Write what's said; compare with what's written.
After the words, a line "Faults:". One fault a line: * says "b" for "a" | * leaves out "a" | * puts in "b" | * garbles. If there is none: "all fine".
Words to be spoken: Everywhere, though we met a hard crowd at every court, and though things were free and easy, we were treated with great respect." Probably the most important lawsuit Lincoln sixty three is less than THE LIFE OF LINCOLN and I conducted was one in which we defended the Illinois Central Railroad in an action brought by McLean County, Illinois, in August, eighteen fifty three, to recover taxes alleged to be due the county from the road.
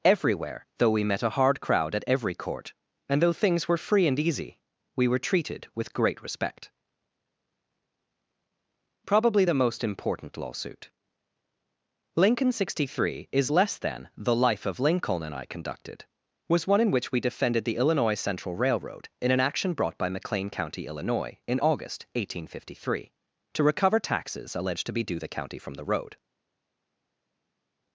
Everywhere, though we met a hard crowd at every court, and though things were free and easy, we were treated with great respect." Probably the most important lawsuit Lincoln sixty three is less than THE LIFE OF LINCOLN and I conducted was one in which we defended the Illinois Central Railroad in an action brought by McLean County, Illinois, in August, eighteen fifty three, to recover taxes alleged to be due the county from the road.
Faults:
all fine